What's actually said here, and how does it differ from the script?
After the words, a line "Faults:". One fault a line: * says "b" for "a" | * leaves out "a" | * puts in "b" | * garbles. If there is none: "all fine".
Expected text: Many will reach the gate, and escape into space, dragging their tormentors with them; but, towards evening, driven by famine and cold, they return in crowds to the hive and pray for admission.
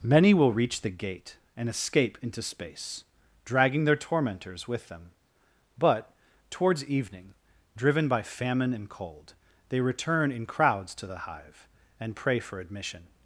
Many will reach the gate, and escape into space, dragging their tormentors with them; but, towards evening, driven by famine and cold, they return in crowds to the hive and pray for admission.
Faults:
all fine